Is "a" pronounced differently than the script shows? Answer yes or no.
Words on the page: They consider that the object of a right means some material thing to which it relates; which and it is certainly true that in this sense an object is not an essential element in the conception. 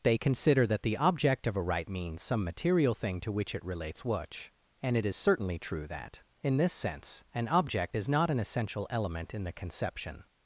no